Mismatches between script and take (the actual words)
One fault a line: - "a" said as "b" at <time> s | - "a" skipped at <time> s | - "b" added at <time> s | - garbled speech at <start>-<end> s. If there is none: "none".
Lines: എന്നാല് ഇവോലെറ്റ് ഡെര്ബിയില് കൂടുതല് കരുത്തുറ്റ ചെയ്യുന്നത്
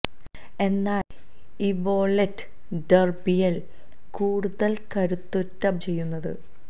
none